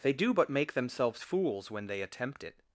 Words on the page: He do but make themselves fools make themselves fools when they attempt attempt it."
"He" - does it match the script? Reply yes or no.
no